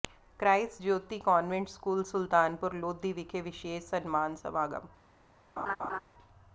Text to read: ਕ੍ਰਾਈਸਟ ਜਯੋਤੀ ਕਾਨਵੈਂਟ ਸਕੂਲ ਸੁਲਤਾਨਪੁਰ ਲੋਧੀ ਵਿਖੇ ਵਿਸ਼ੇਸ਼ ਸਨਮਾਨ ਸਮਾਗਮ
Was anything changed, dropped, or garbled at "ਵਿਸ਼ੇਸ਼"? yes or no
no